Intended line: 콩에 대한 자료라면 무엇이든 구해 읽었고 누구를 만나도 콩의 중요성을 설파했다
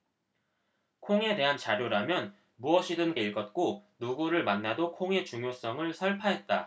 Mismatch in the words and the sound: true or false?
true